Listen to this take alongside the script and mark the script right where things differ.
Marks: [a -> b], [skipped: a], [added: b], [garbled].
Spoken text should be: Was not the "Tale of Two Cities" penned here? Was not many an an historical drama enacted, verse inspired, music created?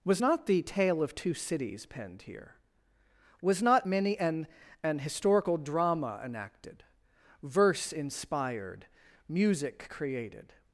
Was not the "Tale of Two Cities" penned here? Was not many an an historical drama enacted, verse inspired, music created?